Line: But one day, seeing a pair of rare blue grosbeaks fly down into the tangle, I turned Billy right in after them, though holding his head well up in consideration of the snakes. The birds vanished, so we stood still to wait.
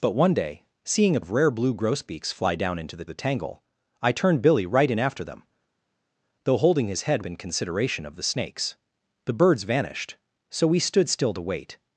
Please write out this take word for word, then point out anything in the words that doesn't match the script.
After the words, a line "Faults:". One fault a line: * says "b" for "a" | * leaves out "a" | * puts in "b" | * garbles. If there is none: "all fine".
But one day, seeing a of rare blue grosbeaks fly down into the the tangle, I turned Billy right in after them, though holding his head in consideration of the snakes. The birds vanished, so we stood still to wait.
Faults:
* leaves out "pair"
* puts in "the"
* leaves out "well up"